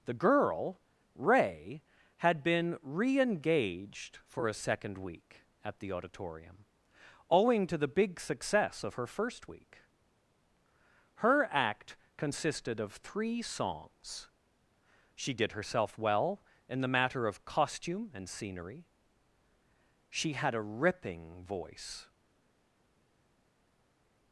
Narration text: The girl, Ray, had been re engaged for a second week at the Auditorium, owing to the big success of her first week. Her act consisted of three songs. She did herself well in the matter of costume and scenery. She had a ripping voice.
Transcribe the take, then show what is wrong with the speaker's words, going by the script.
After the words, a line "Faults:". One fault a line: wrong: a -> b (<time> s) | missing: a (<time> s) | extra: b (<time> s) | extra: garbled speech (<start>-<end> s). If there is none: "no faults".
The girl, Ray, had been re engaged for a second week at the Auditorium, owing to the big success of her first week. Her act consisted of three songs. She did herself well in the matter of costume and scenery. She had a ripping voice.
Faults:
no faults